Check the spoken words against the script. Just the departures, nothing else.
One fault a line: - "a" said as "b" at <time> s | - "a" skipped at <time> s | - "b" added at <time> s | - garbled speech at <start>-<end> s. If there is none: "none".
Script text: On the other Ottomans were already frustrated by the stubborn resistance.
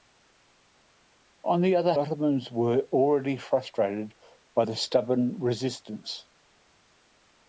none